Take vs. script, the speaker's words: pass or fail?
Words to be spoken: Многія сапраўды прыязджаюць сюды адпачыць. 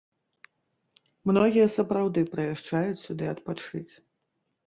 pass